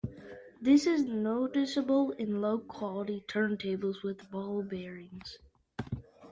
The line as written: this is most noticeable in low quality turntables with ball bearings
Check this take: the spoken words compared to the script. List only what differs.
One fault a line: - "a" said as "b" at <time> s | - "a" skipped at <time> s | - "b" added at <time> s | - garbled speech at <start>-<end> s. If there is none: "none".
- "most" skipped at 1.1 s